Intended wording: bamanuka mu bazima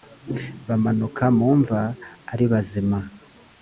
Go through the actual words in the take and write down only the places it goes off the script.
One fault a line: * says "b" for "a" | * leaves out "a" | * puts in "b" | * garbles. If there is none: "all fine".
* puts in "mva ari"